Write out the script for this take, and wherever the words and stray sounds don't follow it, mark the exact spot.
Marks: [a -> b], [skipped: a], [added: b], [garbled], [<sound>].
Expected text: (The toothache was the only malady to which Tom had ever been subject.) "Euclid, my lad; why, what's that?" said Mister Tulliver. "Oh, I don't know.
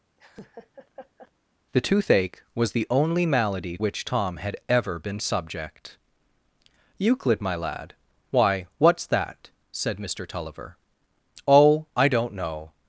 [laugh] (The toothache was the only malady [skipped: to] which Tom had ever been subject.) "Euclid, my lad; why, what's that?" said Mister Tulliver. "Oh, I don't know.